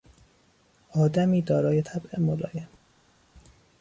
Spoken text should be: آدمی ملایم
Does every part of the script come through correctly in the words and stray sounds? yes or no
no